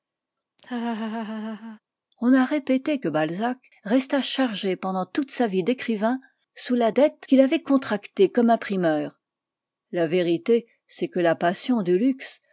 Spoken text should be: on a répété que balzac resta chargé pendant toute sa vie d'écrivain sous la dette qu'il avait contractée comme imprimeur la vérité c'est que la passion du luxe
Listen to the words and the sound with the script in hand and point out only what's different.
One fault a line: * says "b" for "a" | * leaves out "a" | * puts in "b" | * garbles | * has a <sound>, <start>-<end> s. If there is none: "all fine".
* has a laugh, 0.6-1.8 s